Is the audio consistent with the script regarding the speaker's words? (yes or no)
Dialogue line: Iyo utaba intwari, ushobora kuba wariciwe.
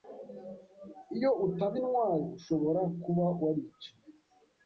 yes